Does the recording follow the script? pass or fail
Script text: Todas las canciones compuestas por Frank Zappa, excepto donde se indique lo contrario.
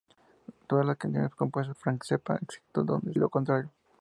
fail